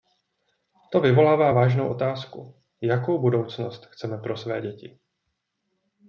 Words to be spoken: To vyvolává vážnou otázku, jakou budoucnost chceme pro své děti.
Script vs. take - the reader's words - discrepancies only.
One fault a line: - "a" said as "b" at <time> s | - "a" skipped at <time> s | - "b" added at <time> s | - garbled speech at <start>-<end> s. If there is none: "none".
none